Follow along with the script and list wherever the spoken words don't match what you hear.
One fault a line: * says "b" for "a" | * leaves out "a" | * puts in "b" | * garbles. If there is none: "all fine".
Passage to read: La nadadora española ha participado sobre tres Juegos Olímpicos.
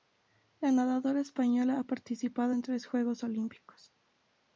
* says "en" for "sobre"